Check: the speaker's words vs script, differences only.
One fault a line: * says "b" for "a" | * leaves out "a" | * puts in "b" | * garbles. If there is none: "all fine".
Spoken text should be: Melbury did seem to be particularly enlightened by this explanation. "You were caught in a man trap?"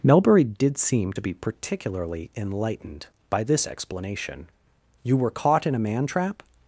all fine